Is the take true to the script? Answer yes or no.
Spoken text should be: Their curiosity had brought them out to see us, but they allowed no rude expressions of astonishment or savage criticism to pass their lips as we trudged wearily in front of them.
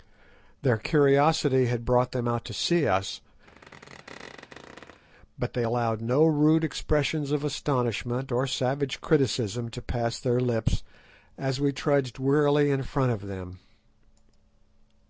yes